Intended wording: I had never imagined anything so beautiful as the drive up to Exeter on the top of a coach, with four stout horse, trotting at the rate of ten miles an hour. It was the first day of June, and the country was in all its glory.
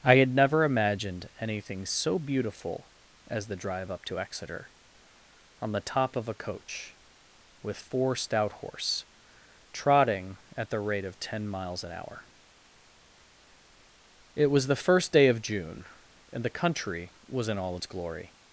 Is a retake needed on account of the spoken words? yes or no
no